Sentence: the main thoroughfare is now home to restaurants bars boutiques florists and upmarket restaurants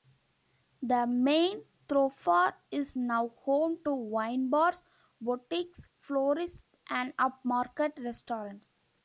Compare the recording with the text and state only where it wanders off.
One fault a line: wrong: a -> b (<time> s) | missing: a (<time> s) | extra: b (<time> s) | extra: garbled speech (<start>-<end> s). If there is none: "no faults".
wrong: restaurants -> wine (3.9 s)